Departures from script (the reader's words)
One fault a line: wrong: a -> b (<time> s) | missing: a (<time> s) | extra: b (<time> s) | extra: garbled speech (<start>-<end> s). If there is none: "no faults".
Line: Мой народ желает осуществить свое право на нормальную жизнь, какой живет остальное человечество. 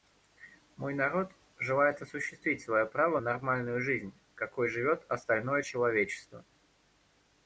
missing: на (3.2 s)